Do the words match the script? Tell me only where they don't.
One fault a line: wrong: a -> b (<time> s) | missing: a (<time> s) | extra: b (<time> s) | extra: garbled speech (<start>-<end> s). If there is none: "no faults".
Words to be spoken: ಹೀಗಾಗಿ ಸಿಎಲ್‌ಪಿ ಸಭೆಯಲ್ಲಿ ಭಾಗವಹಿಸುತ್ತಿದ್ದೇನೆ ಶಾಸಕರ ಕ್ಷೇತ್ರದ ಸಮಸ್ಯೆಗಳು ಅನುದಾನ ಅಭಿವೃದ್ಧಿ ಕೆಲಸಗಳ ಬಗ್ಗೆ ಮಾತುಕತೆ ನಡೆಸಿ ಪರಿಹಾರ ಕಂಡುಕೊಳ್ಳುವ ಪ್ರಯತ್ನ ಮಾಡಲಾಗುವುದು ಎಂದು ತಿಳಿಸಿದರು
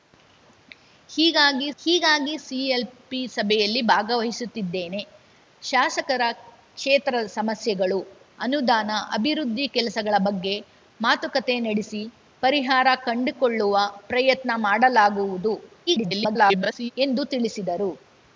extra: ಹೀಗಾಗಿ (1.8 s)
extra: garbled speech (15.9-16.9 s)